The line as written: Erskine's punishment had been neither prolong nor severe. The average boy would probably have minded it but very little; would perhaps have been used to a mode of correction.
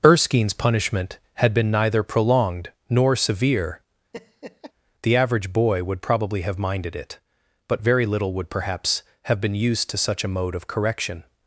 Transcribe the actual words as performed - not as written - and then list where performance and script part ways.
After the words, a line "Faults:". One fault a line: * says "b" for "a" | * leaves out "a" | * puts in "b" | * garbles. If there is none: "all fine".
Erskine's punishment had been neither prolonged nor severe. The average boy would probably have minded it but very little; would perhaps have been used to such a mode of correction.
Faults:
* says "prolonged" for "prolong"
* puts in "such"